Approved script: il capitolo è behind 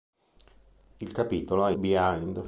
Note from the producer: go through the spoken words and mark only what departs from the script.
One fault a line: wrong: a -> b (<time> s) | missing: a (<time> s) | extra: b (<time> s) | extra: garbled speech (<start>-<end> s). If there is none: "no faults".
no faults